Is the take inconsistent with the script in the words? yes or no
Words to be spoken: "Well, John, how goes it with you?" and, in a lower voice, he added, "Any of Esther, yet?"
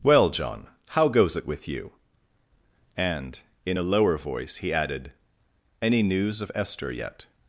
yes